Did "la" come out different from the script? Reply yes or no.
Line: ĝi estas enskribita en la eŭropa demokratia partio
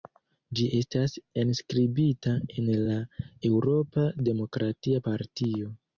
no